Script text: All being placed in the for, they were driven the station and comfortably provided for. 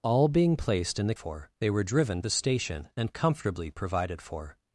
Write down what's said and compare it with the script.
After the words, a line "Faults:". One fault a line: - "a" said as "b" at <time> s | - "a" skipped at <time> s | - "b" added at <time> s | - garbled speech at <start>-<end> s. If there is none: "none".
All being placed in the for, they were driven the station and comfortably provided for.
Faults:
none